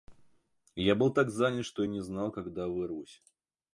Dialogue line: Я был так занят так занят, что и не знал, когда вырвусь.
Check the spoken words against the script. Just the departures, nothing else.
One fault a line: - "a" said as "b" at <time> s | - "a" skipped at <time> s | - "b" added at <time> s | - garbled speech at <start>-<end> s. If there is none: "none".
- "так занят" skipped at 1.6 s